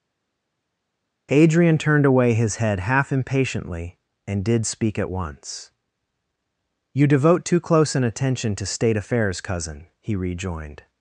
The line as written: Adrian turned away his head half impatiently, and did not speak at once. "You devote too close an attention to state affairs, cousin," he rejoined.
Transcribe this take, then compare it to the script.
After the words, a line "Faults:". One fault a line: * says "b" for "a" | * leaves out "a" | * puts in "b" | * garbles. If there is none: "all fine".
Adrian turned away his head half impatiently, and did speak at once. "You devote too close an attention to state affairs, cousin," he rejoined.
Faults:
* leaves out "not"